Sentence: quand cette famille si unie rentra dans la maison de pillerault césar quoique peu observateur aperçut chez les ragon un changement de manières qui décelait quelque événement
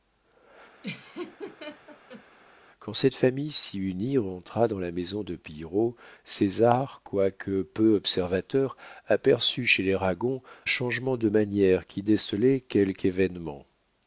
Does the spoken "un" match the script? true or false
false